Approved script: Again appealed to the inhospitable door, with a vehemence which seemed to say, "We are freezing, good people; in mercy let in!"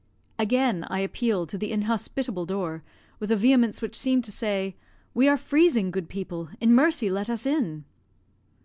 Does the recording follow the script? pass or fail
fail